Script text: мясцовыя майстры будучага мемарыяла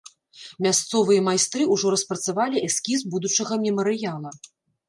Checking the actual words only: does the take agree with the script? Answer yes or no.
no